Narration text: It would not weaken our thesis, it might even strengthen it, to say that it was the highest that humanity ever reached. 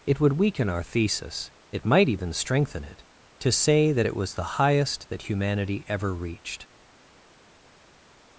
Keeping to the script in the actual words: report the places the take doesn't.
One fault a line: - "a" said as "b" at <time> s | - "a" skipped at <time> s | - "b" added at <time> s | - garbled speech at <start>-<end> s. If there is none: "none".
- "not" skipped at 0.3 s